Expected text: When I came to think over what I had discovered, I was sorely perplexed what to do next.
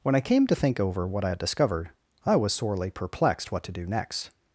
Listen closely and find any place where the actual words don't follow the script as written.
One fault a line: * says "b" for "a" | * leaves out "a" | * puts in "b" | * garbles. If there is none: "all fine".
all fine